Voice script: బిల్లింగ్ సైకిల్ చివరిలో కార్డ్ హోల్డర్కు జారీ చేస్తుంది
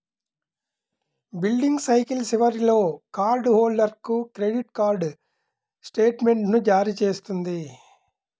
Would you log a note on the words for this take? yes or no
yes